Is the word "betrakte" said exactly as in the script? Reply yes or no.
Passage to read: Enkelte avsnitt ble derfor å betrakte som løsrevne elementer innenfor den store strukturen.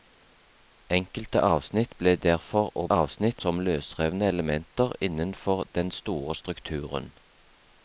no